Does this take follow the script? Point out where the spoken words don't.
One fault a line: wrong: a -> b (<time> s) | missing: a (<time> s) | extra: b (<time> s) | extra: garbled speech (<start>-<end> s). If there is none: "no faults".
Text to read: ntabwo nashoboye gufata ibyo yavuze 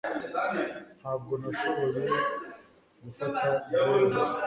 no faults